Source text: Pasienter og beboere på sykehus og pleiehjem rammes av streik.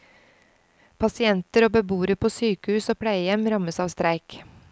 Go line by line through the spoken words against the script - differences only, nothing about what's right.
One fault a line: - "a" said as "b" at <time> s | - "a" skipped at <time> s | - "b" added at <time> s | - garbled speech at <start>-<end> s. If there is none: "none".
none